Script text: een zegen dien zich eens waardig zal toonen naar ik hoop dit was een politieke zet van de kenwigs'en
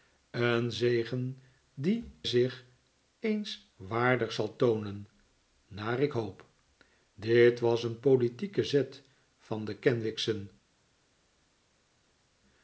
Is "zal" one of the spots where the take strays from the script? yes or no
no